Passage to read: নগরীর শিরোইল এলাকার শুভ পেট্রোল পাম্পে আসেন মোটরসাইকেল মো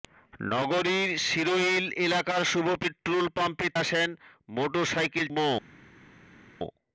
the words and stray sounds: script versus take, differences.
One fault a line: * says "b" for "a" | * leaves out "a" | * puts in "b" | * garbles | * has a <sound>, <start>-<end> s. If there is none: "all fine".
all fine